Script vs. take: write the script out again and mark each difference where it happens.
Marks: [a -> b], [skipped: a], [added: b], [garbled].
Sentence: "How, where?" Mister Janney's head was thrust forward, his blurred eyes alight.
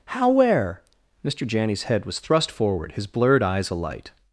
"How, where?" Mister Janney's head was thrust forward, his blurred eyes alight.